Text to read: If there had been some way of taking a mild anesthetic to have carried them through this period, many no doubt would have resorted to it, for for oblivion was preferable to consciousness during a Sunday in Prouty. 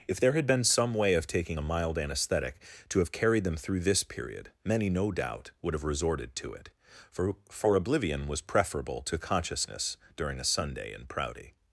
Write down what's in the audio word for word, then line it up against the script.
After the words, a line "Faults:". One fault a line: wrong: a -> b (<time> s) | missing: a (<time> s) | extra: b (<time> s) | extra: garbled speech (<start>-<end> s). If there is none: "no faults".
If there had been some way of taking a mild anesthetic to have carried them through this period, many no doubt would have resorted to it, for for oblivion was preferable to consciousness during a Sunday in Prouty.
Faults:
no faults